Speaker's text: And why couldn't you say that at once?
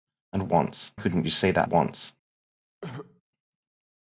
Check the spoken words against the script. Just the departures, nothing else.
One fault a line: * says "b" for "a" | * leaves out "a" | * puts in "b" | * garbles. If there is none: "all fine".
* says "once" for "why"
* leaves out "at"